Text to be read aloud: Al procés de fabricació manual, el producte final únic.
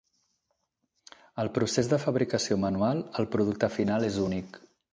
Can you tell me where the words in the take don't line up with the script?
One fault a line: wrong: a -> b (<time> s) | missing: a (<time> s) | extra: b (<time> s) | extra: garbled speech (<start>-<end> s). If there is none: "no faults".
extra: és (4.1 s)